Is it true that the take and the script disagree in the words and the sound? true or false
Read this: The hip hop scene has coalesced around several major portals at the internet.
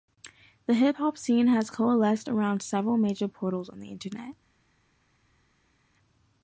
true